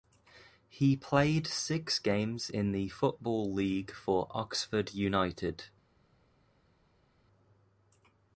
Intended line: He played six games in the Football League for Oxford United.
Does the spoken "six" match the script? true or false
true